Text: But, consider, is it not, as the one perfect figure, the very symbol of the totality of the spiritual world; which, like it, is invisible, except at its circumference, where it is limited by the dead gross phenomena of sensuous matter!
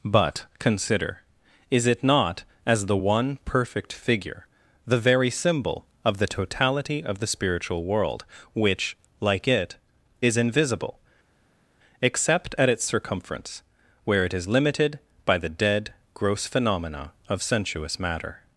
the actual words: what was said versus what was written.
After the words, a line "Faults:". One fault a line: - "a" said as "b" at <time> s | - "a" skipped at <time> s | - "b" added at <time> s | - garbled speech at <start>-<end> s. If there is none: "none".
But, consider, is it not, as the one perfect figure, the very symbol of the totality of the spiritual world; which, like it, is invisible, except at its circumference, where it is limited by the dead gross phenomena of sensuous matter!
Faults:
none